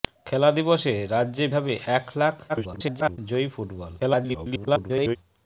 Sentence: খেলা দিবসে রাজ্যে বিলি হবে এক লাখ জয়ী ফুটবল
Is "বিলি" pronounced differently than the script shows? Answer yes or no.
yes